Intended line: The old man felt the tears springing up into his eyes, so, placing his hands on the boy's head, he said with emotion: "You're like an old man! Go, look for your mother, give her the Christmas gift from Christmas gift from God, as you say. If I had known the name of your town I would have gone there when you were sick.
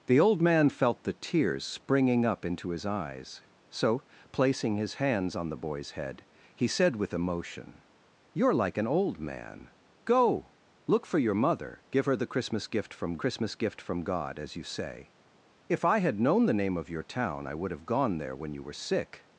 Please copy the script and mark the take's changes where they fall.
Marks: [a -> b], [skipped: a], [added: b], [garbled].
The old man felt the tears springing up into his eyes, so, placing his hands on the boy's head, he said with emotion: "You're like an old man! Go, look for your mother, give her the Christmas gift from Christmas gift from God, as you say. If I had known the name of your town I would have gone there when you were sick.